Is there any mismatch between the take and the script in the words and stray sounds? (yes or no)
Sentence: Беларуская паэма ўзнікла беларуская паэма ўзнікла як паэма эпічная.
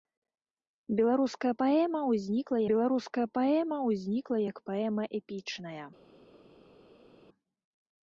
no